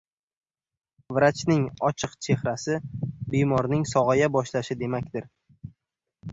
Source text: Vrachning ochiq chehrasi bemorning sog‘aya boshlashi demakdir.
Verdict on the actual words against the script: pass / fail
pass